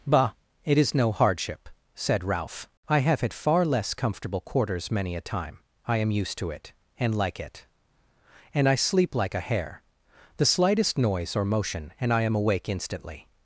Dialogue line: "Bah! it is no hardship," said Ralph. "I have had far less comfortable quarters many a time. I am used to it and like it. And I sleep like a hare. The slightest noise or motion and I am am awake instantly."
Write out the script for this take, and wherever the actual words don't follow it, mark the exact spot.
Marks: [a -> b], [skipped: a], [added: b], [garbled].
"Bah! it is no hardship," said Ralph. "I have had far less comfortable quarters many a time. I am used to it and like it. And I sleep like a hare. The slightest noise or motion and I am [skipped: am] awake instantly."